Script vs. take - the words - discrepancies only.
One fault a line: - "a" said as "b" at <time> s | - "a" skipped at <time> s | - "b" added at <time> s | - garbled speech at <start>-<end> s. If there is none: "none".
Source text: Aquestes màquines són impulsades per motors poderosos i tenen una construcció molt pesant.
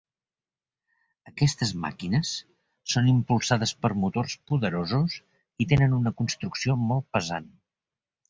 none